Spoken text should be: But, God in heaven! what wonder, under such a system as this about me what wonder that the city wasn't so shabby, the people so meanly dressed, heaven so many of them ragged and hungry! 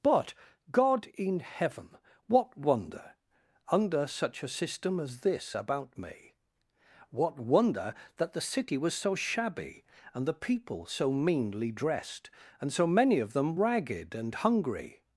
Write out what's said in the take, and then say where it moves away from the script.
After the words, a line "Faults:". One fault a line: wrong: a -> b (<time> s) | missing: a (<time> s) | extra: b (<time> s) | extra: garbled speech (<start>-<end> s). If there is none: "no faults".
But, God in heaven! what wonder, under such a system as this about me what wonder that the city was so shabby, and the people so meanly dressed, and so many of them ragged and hungry!
Faults:
wrong: wasn't -> was (8.8 s)
extra: and (10.1 s)
wrong: heaven -> and (12.6 s)